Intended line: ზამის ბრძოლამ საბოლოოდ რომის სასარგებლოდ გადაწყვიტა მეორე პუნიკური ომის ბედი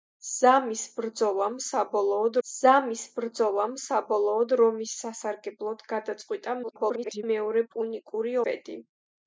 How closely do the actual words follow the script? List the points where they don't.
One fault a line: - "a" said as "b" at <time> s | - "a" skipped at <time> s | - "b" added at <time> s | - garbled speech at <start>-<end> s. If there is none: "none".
- "ზამის ბრძოლამ საბოლოოდ" added at 2.5 s
- garbled speech at 6.6-7.2 s
- "ომის" skipped at 8.4 s